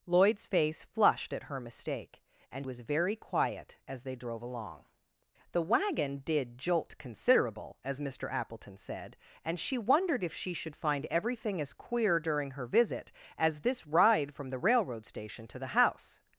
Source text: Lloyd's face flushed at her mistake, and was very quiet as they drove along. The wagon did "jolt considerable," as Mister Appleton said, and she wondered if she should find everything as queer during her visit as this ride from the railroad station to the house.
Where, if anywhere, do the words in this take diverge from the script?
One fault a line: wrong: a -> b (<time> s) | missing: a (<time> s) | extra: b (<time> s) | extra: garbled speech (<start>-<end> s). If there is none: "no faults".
no faults